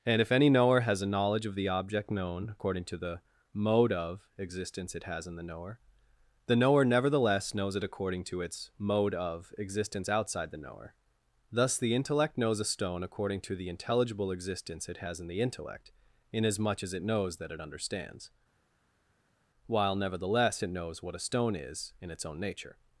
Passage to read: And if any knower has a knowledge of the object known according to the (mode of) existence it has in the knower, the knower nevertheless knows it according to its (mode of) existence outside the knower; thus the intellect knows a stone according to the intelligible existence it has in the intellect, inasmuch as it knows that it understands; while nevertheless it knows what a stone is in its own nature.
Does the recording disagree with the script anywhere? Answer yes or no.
no